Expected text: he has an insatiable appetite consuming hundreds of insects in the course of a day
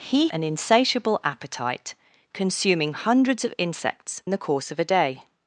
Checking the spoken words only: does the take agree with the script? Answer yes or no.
no